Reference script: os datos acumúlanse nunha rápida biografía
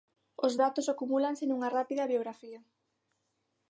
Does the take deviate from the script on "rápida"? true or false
false